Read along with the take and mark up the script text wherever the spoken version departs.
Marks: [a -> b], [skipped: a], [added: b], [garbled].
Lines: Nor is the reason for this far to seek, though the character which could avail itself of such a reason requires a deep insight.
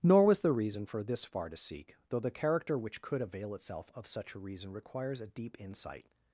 Nor [is -> was] the reason for this far to seek, though the character which could avail itself of such a reason requires a deep insight.